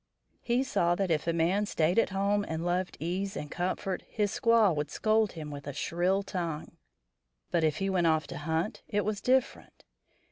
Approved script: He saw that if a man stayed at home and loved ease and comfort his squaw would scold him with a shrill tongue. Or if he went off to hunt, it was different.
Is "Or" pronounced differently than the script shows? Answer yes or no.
yes